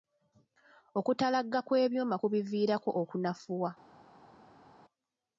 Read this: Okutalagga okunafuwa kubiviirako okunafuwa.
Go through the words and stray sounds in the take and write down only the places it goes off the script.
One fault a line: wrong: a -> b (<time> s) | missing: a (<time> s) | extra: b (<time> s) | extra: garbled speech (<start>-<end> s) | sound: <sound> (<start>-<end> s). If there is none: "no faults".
wrong: okunafuwa -> kw'ebyuma (1.7 s)